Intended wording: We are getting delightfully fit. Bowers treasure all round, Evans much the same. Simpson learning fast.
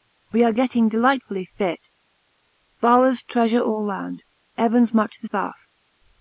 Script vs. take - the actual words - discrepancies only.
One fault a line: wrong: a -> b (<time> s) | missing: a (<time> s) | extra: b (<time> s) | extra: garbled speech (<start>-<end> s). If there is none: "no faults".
missing: same Simpson learning (5.3 s)